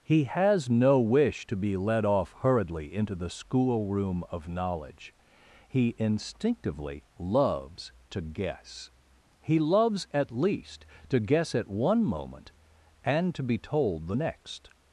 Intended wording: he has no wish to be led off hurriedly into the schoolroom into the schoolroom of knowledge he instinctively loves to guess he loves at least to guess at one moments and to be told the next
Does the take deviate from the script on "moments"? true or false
true